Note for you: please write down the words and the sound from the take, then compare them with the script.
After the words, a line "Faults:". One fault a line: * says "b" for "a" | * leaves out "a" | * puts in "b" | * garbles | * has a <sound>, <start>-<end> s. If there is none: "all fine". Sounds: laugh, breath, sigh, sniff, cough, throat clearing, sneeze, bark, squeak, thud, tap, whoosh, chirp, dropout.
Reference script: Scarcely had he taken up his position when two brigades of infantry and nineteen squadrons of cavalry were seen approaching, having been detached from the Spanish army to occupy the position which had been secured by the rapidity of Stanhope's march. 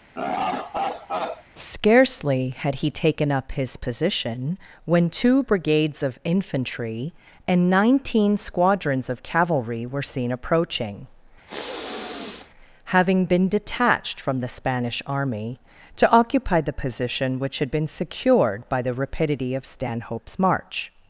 Scarcely had he taken up his position when two brigades of infantry and nineteen squadrons of cavalry were seen approaching, having been detached from the Spanish army to occupy the position which had been secured by the rapidity of Stanhope's march.
Faults:
* has a laugh, 0.1-1.4 s
* has a sniff, 11.5-12.5 s